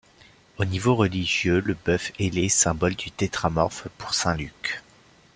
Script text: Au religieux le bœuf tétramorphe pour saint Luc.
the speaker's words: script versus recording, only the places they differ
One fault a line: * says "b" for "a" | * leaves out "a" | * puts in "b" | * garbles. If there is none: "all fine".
* puts in "niveau"
* puts in "ailé symbole du"